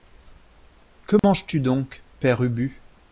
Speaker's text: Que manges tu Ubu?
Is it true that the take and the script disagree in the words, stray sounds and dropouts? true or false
true